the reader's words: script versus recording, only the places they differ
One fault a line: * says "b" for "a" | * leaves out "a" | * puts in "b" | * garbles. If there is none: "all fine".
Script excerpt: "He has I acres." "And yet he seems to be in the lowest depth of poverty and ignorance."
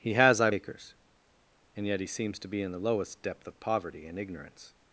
all fine